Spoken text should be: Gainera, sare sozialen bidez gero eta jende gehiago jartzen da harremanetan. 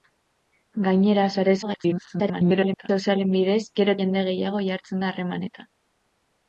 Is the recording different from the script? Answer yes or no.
yes